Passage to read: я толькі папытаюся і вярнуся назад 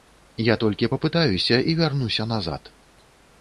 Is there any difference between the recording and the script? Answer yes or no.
no